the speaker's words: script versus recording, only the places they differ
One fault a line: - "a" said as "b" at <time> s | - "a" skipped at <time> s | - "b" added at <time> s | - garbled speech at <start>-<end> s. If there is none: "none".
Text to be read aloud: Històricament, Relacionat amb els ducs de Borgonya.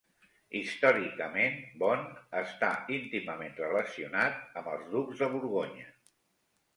- "Beaune està íntimament" added at 1.8 s